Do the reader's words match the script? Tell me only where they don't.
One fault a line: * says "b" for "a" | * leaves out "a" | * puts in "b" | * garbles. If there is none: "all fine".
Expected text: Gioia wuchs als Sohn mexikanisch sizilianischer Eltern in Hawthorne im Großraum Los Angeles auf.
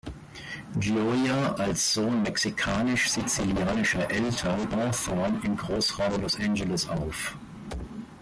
* leaves out "wuchs"
* leaves out "in"